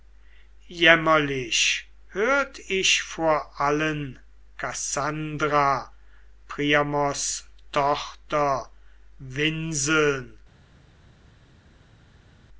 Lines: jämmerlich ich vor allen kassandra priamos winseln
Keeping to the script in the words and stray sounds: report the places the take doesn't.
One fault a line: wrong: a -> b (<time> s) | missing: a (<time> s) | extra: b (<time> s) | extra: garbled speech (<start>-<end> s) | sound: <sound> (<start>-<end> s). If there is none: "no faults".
extra: hört (2.1 s)
extra: tochter (7.7 s)